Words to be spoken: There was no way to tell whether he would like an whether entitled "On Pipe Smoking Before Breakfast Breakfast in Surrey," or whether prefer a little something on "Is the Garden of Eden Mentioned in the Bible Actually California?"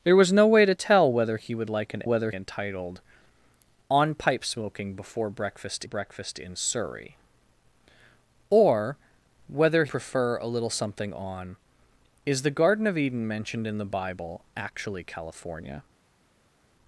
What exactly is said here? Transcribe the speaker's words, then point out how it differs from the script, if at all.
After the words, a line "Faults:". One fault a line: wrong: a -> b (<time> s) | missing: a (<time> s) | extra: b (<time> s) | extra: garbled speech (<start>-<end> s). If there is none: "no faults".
There was no way to tell whether he would like an whether entitled "On Pipe Smoking Before Breakfast Breakfast in Surrey," or whether prefer a little something on "Is the Garden of Eden Mentioned in the Bible Actually California?"
Faults:
no faults